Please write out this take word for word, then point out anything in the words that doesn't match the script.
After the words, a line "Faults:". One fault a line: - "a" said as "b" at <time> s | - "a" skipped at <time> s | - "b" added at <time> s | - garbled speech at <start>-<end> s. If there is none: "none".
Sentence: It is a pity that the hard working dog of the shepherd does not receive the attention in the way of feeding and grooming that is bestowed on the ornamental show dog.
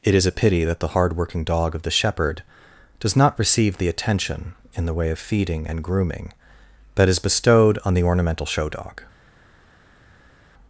It is a pity that the hard working dog of the shepherd does not receive the attention in the way of feeding and grooming that is bestowed on the ornamental show dog.
Faults:
none